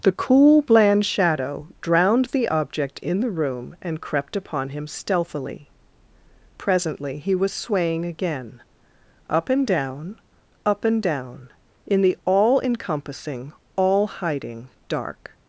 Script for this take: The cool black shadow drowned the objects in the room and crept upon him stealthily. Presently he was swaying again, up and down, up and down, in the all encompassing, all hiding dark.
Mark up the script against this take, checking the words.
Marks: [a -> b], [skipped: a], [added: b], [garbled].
The cool [black -> bland] shadow drowned the [objects -> object] in the room and crept upon him stealthily. Presently he was swaying again, up and down, up and down, in the all encompassing, all hiding dark.